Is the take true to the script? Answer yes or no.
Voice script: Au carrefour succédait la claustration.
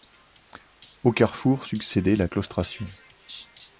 yes